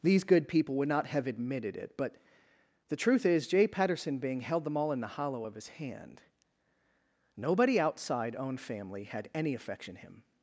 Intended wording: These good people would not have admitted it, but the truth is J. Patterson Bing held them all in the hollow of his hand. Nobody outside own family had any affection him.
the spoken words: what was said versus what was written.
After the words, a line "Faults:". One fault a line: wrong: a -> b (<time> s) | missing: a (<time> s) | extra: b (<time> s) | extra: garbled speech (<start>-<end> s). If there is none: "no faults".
These good people would not have admitted it, but the truth is J. Patterson Bing held them all in the hollow of his hand. Nobody outside own family had any affection him.
Faults:
no faults